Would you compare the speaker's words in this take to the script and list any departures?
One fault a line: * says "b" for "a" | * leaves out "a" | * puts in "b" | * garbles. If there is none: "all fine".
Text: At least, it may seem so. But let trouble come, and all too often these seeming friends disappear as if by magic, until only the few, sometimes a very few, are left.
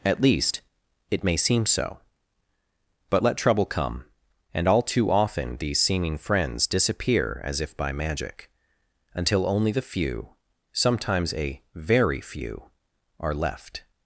all fine